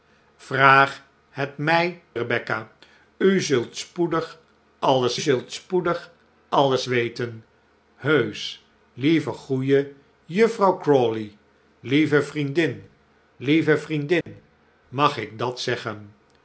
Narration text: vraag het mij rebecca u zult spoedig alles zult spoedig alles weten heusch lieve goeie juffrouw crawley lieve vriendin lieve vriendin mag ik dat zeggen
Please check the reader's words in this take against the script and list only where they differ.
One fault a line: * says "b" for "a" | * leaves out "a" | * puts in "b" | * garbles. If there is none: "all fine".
all fine